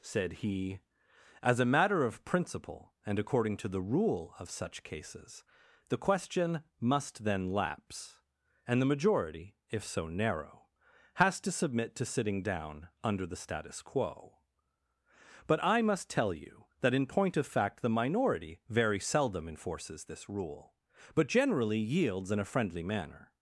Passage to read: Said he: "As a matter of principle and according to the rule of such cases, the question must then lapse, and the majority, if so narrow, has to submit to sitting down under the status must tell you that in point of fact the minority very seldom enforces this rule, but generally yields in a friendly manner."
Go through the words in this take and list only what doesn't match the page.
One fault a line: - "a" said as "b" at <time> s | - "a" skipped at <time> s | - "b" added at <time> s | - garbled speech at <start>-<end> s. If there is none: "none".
- "quo But I" added at 13.8 s